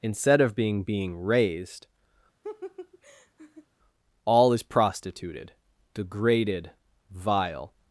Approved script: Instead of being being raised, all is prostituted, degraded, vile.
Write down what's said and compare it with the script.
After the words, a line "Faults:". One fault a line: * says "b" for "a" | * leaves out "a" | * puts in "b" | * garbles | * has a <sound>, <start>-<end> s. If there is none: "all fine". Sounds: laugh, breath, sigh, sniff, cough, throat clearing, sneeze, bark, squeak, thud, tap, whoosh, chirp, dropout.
Instead of being being raised, all is prostituted, degraded, vile.
Faults:
* has a laugh, 2.4-3.7 s